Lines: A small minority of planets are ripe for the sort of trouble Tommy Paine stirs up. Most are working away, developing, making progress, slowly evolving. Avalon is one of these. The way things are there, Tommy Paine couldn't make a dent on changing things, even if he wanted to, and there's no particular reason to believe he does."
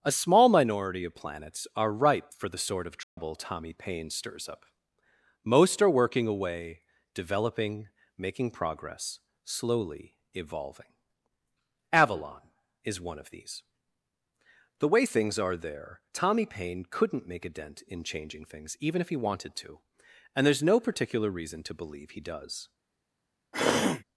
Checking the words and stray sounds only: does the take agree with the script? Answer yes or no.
no